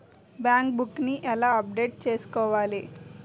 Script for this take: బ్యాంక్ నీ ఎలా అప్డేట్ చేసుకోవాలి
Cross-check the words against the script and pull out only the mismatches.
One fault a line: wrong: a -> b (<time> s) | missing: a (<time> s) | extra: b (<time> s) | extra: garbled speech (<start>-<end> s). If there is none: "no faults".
extra: బుక్ (0.8 s)